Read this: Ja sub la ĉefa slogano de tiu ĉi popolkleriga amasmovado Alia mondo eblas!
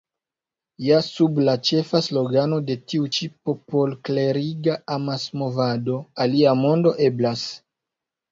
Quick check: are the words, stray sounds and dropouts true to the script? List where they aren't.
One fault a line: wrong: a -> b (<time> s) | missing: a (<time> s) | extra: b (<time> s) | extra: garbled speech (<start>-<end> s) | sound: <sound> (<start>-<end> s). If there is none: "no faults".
no faults